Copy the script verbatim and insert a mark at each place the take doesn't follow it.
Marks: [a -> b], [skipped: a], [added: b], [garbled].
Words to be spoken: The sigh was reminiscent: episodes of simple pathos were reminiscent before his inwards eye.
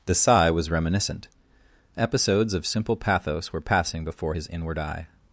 The sigh was reminiscent: episodes of simple pathos were [reminiscent -> passing] before his [inwards -> inward] eye.